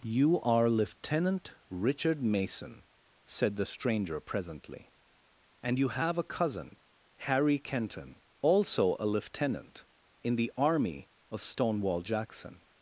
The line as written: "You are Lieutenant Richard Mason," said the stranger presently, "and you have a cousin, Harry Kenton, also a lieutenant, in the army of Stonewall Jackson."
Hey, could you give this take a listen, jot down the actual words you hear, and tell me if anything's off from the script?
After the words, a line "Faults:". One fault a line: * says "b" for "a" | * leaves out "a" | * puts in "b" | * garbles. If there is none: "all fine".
"You are Lieutenant Richard Mason," said the stranger presently, "and you have a cousin, Harry Kenton, also a lieutenant, in the army of Stonewall Jackson."
Faults:
all fine